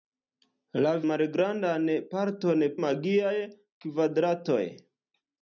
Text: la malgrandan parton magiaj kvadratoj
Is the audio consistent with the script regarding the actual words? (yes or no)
yes